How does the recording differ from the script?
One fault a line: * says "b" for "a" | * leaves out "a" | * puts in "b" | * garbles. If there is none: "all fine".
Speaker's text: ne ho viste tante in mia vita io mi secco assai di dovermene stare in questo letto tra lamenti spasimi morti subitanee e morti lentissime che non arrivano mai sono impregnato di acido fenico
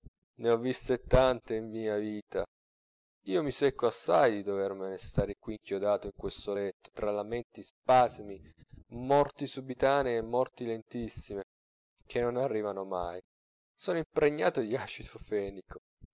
* puts in "qui inchiodato"